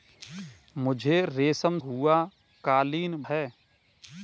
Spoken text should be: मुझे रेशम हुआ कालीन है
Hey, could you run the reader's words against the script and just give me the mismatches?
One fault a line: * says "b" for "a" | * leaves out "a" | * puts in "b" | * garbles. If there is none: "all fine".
all fine